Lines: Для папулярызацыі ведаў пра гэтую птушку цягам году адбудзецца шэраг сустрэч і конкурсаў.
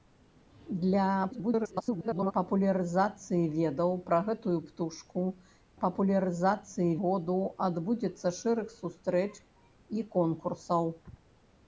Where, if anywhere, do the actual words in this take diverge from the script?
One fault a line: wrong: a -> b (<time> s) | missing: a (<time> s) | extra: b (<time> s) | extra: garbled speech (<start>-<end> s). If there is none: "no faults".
extra: garbled speech (1.3-2.3 s)
wrong: цягам -> папулярызацыі (5.8 s)